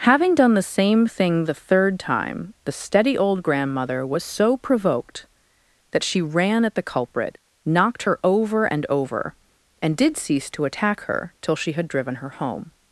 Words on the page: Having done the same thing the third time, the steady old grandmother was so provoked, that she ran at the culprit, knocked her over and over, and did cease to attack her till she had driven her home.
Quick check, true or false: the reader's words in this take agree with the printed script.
true